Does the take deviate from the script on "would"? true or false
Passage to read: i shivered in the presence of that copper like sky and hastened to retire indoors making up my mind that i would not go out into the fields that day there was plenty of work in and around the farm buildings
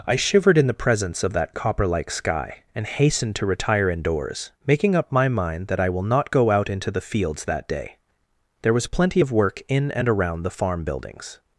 true